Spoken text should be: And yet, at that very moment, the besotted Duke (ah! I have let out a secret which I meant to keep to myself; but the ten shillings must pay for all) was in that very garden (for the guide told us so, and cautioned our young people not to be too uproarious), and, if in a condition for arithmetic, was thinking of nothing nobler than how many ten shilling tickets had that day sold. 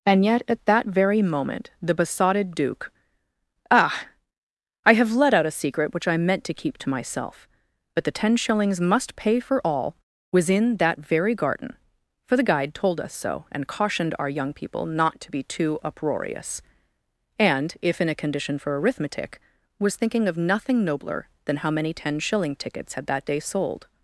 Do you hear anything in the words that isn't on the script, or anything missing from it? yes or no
no